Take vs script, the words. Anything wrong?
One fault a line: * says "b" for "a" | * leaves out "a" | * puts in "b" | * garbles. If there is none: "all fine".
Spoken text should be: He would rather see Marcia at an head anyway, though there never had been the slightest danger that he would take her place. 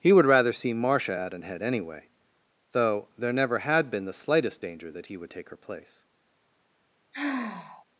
all fine